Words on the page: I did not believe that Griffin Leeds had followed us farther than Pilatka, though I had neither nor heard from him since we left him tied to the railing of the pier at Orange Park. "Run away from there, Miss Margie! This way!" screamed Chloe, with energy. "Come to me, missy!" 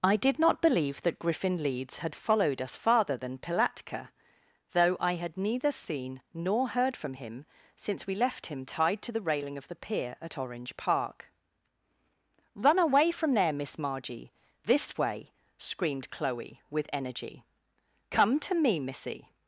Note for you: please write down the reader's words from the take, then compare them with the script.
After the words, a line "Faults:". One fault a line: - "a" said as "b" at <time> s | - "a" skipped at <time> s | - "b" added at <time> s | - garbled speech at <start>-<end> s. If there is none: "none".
I did not believe that Griffin Leeds had followed us farther than Pilatka, though I had neither seen nor heard from him since we left him tied to the railing of the pier at Orange Park. "Run away from there, Miss Margie! This way!" screamed Chloe, with energy. "Come to me, missy!"
Faults:
- "seen" added at 5.7 s